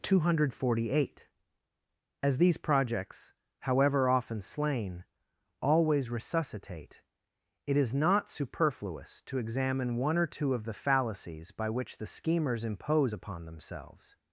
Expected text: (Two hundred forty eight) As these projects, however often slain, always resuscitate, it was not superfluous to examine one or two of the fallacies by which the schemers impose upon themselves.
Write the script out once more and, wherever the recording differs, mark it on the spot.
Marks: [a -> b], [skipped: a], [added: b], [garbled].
(Two hundred forty eight) As these projects, however often slain, always resuscitate, it [was -> is] not superfluous to examine one or two of the fallacies by which the schemers impose upon themselves.